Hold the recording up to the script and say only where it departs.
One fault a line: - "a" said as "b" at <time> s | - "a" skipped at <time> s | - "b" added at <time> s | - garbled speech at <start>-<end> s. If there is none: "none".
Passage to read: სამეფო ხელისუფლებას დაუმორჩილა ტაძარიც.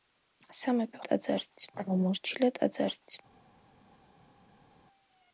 - "ხელისუფლებას" said as "ტაძარიც" at 1.1 s